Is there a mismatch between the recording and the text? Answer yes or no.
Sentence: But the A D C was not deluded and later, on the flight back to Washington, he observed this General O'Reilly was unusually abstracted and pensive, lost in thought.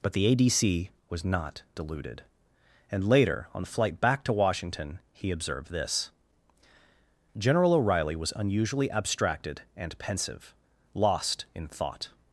no